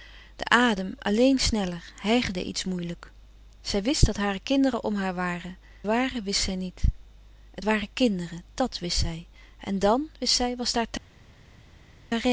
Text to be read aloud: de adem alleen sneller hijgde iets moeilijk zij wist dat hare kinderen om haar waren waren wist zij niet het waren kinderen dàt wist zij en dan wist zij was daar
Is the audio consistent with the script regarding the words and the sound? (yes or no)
yes